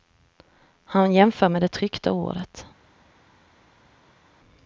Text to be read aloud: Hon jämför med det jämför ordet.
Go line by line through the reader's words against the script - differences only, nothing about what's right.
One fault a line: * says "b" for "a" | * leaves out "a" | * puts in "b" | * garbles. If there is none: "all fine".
* says "Han" for "Hon"
* says "tryckta" for "jämför"